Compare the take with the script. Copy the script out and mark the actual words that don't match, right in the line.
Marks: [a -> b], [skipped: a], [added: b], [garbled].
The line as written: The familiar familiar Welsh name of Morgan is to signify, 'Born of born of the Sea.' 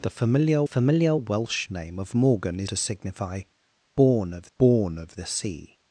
The familiar familiar Welsh name of Morgan is to signify, 'Born of born of the Sea.'